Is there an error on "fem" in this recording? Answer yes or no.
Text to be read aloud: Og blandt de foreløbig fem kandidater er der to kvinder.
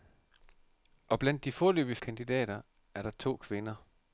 yes